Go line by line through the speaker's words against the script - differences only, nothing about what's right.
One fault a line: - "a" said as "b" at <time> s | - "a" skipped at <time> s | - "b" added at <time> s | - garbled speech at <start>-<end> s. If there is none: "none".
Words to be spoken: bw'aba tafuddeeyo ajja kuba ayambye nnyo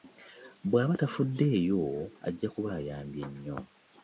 none